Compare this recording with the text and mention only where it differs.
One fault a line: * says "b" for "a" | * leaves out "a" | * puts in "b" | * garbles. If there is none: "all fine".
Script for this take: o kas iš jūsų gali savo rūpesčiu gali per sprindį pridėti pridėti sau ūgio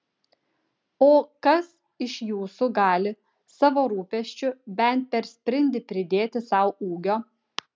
* says "bent" for "gali"
* leaves out "pridėti"